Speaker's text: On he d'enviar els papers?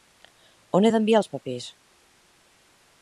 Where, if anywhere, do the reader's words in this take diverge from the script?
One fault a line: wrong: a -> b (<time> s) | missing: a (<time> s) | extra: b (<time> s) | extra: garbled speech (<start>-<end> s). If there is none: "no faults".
no faults